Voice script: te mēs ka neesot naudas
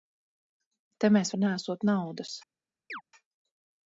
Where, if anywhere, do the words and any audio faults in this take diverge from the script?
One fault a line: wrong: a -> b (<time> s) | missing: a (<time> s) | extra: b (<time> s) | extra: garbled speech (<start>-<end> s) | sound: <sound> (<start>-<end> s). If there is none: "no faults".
sound: chirp (2.9-3.0 s)